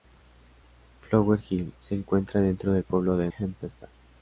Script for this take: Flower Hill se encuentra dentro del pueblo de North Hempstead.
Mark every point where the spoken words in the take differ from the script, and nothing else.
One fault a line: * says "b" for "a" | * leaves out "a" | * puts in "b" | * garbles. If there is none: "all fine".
* leaves out "North"